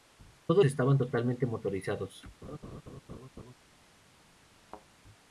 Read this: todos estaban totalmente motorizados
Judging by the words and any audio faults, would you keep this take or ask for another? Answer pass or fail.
fail